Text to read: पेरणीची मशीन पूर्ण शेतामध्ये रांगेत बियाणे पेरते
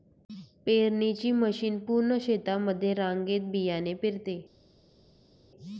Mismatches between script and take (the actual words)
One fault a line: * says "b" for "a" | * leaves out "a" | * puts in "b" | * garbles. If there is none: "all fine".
all fine